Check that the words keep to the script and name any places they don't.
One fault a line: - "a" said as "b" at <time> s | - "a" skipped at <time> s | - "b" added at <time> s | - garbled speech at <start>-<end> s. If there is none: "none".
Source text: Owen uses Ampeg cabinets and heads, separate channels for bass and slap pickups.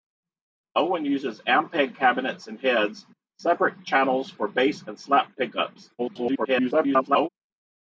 - garbled speech at 6.0-7.3 s